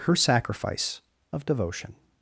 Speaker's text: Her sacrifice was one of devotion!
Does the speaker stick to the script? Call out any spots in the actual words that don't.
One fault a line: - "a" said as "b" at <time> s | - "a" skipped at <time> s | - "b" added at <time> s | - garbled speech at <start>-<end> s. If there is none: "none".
- "was one" skipped at 1.0 s